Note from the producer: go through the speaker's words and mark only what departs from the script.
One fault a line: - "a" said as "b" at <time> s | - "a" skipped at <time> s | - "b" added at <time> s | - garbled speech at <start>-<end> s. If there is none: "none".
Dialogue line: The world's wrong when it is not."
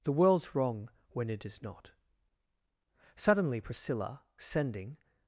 - "Suddenly Priscilla sending" added at 3.1 s